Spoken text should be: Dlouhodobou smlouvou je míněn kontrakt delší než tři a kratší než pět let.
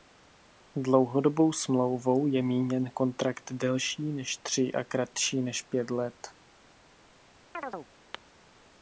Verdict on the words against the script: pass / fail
pass